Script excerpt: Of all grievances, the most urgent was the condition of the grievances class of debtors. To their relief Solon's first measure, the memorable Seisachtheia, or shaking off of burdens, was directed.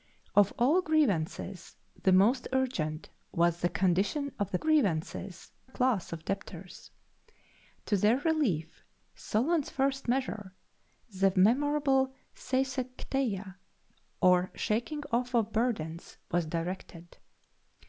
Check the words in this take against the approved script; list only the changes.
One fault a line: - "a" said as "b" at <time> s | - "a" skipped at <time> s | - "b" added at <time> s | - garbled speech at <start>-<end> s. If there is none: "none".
none